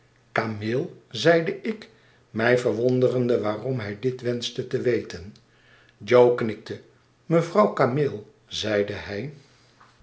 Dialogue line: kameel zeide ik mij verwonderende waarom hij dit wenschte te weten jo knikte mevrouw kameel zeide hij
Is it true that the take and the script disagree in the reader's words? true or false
false